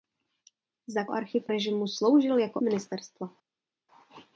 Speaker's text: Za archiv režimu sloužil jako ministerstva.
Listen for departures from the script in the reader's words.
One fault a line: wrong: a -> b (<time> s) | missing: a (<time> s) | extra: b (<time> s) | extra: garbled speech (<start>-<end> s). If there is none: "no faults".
no faults